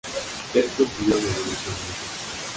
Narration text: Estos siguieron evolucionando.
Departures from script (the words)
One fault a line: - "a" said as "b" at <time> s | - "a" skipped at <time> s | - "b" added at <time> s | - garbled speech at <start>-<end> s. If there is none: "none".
none